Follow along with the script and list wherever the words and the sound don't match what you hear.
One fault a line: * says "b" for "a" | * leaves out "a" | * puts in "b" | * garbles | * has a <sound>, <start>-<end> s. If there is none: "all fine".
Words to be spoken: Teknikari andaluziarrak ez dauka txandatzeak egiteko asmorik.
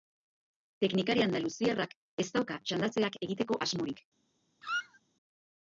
* has a squeak, 4.6-5.0 s